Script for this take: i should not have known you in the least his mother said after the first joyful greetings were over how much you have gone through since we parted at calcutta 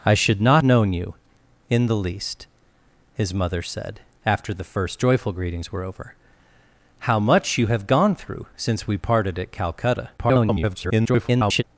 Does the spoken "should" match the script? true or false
true